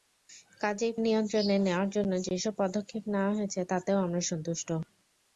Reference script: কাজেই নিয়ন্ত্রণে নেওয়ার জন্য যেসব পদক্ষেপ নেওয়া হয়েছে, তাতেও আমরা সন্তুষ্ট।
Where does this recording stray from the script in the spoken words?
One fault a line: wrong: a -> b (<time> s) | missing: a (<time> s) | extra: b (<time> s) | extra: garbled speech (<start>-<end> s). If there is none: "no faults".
no faults